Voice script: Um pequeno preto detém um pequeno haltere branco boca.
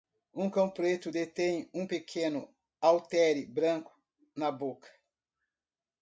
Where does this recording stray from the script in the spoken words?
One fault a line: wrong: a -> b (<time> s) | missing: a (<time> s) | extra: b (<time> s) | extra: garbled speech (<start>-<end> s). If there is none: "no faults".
wrong: pequeno -> cão (0.5 s)
extra: na (4.3 s)